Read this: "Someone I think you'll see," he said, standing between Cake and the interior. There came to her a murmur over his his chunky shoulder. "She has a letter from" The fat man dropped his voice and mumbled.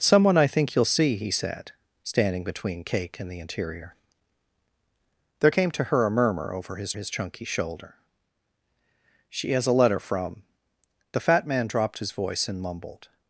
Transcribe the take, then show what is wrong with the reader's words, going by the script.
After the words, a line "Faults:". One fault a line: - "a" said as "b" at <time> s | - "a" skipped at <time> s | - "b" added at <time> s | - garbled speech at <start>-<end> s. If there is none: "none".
"Someone I think you'll see," he said, standing between Cake and the interior. There came to her a murmur over his his chunky shoulder. "She has a letter from" The fat man dropped his voice and mumbled.
Faults:
none